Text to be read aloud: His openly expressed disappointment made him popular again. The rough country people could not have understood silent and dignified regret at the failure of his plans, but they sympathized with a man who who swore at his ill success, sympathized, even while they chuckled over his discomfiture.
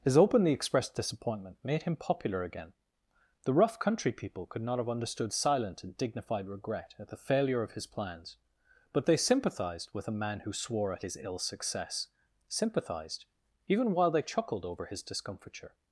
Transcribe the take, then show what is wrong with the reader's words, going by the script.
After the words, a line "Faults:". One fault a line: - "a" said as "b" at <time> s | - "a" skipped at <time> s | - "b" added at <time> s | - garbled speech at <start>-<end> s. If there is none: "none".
His openly expressed disappointment made him popular again. The rough country people could not have understood silent and dignified regret at the failure of his plans, but they sympathized with a man who swore at his ill success, sympathized, even while they chuckled over his discomfiture.
Faults:
- "who" skipped at 10.5 s